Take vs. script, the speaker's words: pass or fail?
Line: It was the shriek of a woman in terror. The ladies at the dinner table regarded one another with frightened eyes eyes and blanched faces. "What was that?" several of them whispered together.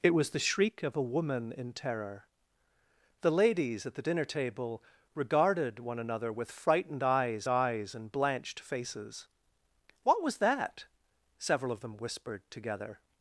pass